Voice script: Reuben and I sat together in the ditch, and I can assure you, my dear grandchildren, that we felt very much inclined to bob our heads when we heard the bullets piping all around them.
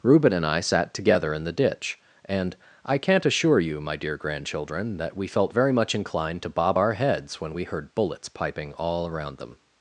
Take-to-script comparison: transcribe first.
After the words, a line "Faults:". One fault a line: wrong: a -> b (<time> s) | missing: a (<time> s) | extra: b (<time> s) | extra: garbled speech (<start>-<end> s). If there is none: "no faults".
Reuben and I sat together in the ditch, and I can't assure you, my dear grandchildren, that we felt very much inclined to bob our heads when we heard bullets piping all around them.
Faults:
wrong: can -> can't (3.0 s)
missing: the (7.9 s)